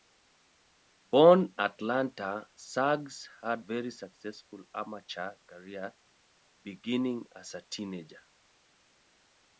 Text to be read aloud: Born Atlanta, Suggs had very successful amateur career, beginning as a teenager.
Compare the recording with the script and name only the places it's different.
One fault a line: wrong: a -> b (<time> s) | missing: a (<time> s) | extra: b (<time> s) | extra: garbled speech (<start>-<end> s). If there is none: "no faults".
no faults